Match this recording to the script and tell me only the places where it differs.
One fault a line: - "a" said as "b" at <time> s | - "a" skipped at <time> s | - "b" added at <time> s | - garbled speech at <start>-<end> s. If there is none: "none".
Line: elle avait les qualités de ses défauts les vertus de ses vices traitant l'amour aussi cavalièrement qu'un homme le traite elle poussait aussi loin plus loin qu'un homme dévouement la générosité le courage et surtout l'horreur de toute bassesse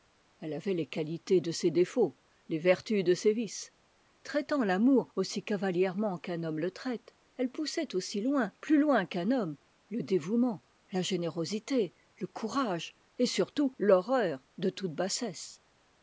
- "le" added at 9.9 s